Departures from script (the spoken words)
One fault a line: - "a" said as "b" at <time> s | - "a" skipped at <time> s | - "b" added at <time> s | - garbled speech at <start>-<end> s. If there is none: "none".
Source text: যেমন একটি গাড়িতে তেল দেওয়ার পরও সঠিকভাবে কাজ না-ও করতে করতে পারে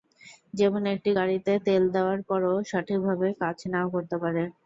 - "করতে" skipped at 4.2 s